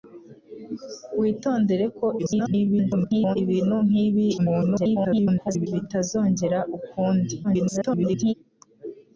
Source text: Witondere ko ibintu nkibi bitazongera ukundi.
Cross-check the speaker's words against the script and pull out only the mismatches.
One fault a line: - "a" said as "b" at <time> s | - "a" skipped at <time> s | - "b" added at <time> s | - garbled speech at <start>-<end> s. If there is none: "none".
- garbled speech at 2.2-3.4 s
- garbled speech at 4.4-5.7 s
- garbled speech at 7.4-8.3 s